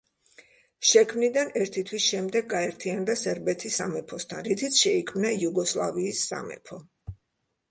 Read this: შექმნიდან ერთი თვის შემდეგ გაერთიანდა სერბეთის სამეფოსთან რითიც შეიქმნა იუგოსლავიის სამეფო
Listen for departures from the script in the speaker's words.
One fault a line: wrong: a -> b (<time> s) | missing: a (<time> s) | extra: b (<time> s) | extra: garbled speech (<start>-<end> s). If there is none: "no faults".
no faults